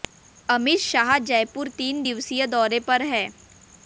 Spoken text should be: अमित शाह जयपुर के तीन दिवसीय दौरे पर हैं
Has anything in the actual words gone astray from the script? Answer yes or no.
yes